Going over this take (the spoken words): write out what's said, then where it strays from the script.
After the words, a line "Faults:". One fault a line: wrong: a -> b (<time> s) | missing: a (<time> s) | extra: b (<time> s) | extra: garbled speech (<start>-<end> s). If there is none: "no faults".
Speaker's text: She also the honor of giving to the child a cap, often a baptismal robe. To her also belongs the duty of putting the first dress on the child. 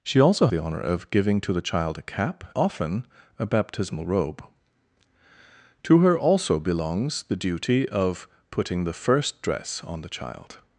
She also the honor of giving to the child a cap, often a baptismal robe. To her also belongs the duty of putting the first dress on the child.
Faults:
no faults